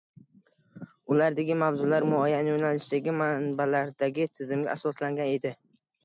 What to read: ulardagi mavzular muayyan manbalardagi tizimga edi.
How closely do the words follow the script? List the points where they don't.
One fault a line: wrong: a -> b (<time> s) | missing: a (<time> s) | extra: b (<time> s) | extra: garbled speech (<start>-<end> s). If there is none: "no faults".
extra: yo‘nalishdagi (2.5 s)
extra: asoslangan (4.8 s)